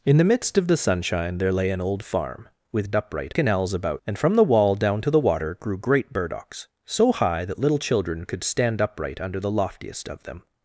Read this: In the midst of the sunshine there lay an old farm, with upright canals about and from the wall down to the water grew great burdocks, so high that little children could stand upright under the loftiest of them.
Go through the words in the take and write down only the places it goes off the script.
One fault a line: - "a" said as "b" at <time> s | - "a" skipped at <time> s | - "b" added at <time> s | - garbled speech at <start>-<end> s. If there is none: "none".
none